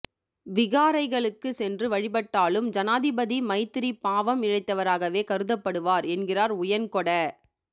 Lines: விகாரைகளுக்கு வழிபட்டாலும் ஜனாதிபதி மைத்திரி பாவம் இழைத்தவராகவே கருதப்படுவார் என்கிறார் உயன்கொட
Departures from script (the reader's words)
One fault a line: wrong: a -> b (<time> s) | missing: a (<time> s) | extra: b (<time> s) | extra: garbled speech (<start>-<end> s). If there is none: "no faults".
extra: சென்று (1.5 s)